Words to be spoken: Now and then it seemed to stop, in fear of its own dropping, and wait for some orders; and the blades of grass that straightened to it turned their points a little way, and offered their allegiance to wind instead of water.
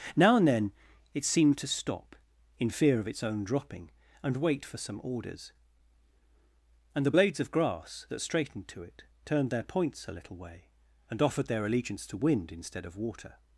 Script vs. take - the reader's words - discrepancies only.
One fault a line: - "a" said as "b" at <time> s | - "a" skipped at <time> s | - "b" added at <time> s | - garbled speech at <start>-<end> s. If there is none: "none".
none